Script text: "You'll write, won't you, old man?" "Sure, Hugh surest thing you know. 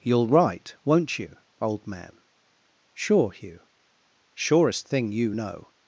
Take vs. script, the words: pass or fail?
pass